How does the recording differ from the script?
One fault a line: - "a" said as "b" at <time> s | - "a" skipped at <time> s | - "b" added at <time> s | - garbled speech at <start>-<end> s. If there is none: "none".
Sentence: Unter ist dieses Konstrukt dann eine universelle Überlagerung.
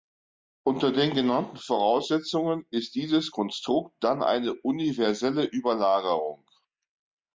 - "den genannten Voraussetzungen" added at 0.9 s